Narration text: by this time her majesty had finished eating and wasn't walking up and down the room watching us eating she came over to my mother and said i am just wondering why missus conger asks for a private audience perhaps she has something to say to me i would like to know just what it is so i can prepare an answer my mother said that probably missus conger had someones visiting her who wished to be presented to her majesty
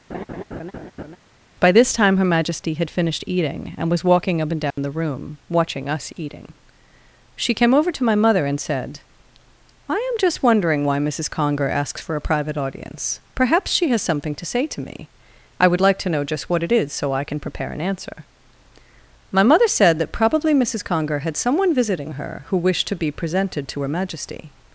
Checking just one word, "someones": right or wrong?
wrong